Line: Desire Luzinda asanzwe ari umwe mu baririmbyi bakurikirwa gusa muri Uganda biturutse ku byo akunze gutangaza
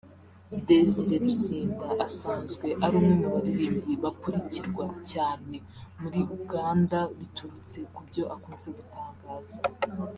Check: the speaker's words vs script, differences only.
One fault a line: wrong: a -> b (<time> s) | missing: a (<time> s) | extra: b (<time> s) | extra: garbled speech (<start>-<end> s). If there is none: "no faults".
wrong: gusa -> cyane (5.1 s)